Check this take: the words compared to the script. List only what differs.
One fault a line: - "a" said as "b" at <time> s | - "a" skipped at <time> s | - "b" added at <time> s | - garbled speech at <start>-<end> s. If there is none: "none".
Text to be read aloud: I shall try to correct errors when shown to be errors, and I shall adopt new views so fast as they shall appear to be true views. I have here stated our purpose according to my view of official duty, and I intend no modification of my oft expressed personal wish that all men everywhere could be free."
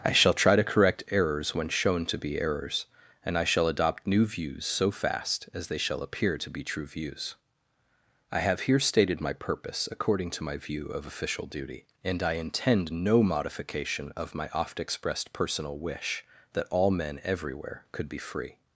- "our" said as "my" at 9.2 s